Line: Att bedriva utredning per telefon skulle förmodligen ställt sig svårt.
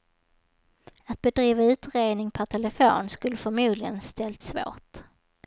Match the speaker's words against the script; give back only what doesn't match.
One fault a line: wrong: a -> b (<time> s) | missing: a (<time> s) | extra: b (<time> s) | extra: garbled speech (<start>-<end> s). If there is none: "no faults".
missing: sig (4.4 s)